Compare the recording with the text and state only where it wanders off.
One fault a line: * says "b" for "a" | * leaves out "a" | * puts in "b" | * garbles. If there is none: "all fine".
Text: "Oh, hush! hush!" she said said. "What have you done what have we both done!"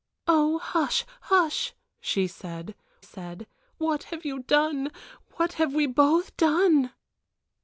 all fine